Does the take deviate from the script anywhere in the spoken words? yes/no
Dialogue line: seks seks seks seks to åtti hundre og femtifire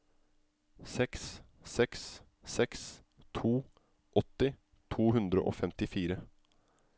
yes